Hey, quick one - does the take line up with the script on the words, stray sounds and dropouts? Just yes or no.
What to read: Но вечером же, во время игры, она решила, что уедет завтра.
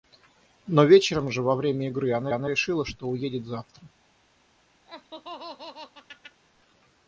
no